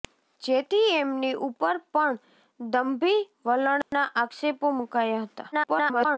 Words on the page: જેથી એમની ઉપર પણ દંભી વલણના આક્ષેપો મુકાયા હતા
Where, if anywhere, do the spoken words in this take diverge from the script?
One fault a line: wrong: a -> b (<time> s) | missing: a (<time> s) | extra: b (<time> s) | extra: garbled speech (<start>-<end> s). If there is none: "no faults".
extra: garbled speech (5.5-6.2 s)